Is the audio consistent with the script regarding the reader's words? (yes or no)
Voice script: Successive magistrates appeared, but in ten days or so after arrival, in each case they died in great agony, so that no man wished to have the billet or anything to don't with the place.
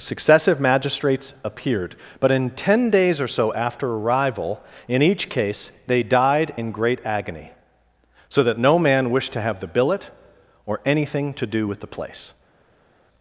no